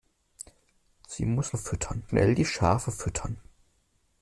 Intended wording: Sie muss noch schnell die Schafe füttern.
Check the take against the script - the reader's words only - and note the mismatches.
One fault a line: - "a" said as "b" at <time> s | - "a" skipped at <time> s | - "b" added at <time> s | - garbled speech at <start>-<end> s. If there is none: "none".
- "noch" said as "füttern" at 1.6 s